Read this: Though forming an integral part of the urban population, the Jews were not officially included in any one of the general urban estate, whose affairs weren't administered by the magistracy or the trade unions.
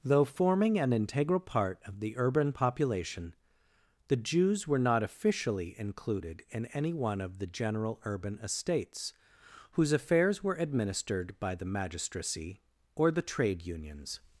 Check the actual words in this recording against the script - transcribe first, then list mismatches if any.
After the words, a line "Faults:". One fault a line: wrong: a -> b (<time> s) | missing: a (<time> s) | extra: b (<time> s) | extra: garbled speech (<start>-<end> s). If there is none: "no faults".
Though forming an integral part of the urban population, the Jews were not officially included in any one of the general urban estates, whose affairs were administered by the magistracy or the trade unions.
Faults:
wrong: estate -> estates (8.4 s)
wrong: weren't -> were (10.4 s)